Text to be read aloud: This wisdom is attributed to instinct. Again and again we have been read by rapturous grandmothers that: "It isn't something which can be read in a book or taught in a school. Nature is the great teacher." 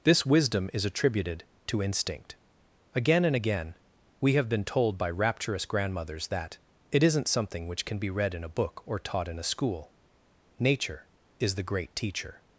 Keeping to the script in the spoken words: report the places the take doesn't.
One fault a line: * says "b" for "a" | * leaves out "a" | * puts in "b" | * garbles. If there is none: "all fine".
* says "told" for "read"